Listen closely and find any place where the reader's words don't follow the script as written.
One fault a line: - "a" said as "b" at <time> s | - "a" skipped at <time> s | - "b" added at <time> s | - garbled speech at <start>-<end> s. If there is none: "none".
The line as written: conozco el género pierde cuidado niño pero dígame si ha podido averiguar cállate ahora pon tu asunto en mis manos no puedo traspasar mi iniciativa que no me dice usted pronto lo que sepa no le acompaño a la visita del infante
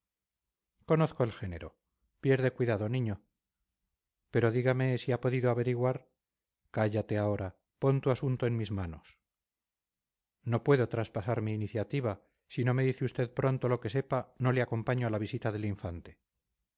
- "que" said as "si" at 12.5 s